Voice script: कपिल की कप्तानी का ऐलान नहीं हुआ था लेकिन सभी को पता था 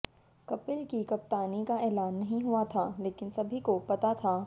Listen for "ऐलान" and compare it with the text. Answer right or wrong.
right